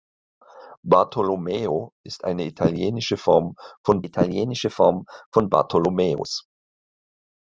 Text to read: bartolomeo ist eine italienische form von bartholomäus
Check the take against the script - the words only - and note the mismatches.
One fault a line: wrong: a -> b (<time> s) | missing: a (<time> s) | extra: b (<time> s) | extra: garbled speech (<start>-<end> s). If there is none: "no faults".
extra: italienische form von (4.0 s)